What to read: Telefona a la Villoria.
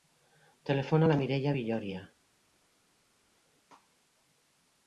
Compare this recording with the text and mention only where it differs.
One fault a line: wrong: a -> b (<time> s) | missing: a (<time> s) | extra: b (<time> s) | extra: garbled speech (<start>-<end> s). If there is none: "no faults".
extra: Mireia (1.2 s)